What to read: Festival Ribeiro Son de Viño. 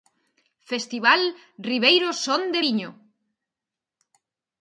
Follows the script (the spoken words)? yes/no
yes